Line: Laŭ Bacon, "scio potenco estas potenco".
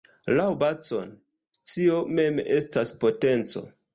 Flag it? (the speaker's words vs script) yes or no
yes